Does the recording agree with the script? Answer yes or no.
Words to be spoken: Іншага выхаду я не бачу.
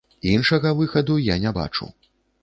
yes